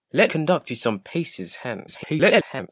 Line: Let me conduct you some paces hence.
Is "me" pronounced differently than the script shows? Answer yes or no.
yes